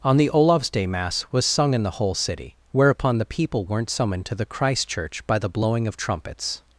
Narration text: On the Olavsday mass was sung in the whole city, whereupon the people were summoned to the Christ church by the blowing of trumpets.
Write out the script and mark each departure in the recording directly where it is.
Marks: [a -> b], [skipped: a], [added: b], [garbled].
On the Olavsday mass was sung in the whole city, whereupon the people [were -> weren't] summoned to the Christ church by the blowing of trumpets.